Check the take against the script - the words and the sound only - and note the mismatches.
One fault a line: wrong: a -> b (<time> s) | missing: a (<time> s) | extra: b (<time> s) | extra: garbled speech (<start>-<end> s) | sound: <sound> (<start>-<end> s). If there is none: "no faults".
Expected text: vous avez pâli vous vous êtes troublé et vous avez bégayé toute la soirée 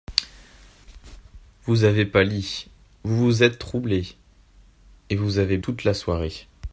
missing: bégayé (5.6 s)